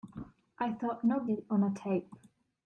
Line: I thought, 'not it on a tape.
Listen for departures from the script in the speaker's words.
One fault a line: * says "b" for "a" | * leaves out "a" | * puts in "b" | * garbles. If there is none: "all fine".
all fine